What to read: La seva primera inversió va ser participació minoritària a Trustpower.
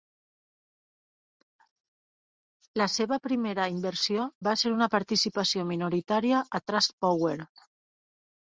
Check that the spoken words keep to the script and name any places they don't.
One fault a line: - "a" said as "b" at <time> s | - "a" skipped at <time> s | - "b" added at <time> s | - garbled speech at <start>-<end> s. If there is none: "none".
- "una" added at 4.8 s